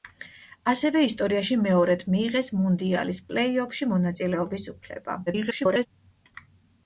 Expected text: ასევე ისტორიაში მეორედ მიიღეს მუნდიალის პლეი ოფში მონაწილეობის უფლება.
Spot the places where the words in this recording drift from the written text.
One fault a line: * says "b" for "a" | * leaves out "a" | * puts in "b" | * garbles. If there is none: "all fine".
* garbles